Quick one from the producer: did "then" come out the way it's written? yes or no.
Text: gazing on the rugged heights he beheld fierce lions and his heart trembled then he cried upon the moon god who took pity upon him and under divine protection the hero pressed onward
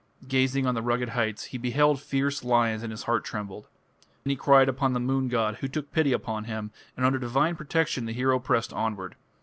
no